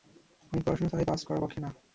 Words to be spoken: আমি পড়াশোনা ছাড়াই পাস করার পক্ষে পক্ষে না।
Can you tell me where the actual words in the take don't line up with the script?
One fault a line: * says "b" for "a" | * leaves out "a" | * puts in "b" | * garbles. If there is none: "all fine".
* leaves out "পক্ষে"